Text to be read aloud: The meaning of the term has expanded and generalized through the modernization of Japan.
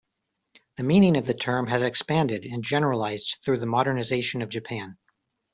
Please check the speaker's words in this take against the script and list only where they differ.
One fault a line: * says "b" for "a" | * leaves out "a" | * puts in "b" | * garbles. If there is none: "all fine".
all fine